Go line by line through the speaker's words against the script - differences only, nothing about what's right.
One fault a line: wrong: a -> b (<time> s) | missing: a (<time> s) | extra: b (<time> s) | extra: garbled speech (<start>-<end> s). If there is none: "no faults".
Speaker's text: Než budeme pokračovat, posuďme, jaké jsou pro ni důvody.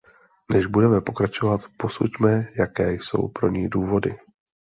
no faults